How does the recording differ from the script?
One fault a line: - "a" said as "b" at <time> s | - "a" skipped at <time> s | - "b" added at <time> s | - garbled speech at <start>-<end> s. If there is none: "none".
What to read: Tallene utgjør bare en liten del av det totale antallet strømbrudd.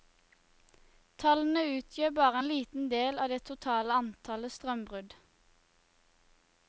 none